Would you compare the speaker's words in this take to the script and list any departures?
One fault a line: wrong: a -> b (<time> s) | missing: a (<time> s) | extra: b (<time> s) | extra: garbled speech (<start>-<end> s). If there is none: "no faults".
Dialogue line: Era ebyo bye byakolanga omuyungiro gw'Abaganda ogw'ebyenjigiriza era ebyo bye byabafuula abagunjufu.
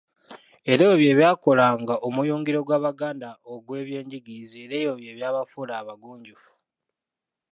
no faults